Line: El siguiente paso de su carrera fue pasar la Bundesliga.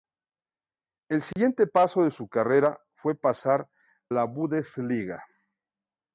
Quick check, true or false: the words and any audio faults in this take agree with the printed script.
false